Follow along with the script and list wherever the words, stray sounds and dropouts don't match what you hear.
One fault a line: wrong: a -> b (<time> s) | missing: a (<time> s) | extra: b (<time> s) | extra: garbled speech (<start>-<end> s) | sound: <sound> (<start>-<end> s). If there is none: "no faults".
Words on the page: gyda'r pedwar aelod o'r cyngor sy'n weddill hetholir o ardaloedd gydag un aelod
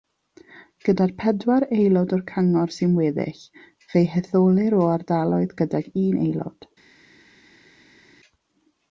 extra: fe'i (3.9 s)